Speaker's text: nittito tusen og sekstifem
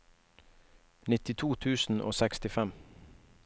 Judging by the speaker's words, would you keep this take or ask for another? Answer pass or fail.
pass